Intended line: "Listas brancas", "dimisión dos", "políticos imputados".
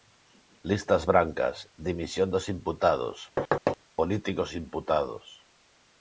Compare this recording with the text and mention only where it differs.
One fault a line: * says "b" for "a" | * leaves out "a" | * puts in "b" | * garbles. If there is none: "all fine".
* puts in "imputados"